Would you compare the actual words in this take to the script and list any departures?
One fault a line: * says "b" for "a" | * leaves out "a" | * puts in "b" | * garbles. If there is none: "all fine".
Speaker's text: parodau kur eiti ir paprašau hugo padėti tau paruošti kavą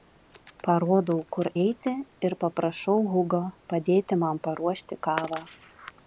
* says "man" for "tau"